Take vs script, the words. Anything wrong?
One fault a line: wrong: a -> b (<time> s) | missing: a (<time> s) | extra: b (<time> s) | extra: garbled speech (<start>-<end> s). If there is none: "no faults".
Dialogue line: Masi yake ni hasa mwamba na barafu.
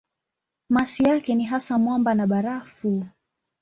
no faults